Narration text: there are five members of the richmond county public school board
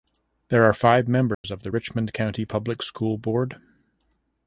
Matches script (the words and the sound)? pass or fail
fail